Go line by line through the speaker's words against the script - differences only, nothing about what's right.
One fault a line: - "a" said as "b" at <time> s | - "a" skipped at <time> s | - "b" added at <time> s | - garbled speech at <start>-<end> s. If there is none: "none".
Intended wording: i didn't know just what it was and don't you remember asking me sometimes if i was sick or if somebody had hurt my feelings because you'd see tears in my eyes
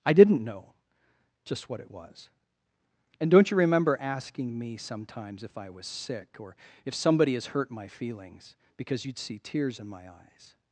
- "had" said as "has" at 7.3 s